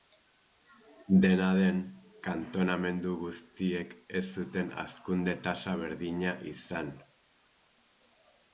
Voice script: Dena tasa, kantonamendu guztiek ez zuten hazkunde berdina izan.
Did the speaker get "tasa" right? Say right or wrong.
wrong